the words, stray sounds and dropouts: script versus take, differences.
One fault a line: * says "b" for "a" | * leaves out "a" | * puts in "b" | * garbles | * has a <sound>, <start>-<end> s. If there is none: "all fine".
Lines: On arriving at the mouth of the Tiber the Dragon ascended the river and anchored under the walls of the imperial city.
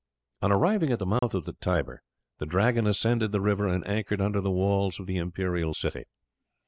* has a dropout, 1.2-1.2 s